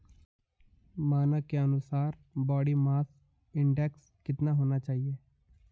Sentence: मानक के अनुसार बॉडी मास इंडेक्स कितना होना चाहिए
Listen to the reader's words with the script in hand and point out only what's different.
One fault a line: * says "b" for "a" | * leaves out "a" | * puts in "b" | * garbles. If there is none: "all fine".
all fine